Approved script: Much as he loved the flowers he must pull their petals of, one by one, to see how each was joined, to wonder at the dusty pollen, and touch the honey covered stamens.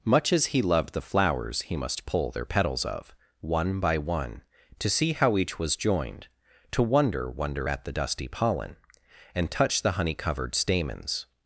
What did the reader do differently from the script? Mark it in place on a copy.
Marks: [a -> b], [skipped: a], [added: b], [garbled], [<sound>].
Much as he loved the flowers he must pull their petals of, one by one, to see how each was joined, to wonder [added: wonder] at the dusty pollen, and touch the honey covered stamens.